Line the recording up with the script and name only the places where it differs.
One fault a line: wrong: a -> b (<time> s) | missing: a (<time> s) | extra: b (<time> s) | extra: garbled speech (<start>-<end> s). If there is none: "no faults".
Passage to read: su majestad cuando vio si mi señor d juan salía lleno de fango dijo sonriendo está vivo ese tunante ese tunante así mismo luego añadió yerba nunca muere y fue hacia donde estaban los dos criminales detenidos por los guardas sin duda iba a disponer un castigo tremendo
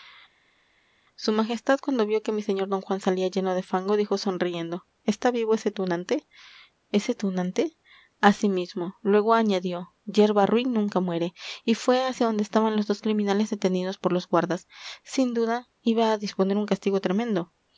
wrong: si -> que (2.2 s)
extra: ruin (10.5 s)